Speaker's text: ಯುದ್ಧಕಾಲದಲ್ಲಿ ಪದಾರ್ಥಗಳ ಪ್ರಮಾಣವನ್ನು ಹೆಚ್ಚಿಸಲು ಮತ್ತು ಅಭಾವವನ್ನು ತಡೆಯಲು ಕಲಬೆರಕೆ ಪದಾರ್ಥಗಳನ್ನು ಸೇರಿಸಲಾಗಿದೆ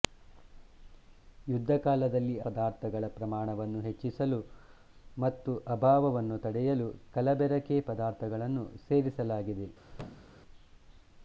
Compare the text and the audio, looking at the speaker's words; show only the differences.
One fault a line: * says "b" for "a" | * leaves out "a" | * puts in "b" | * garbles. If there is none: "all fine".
all fine